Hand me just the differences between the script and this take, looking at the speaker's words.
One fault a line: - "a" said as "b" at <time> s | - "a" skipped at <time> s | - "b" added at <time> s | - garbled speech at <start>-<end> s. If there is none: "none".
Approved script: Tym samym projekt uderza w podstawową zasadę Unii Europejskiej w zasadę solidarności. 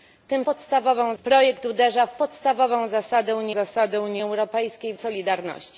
- "samym" said as "podstawową" at 0.4 s
- "zasadę Unii" added at 3.5 s
- "zasadę" skipped at 5.0 s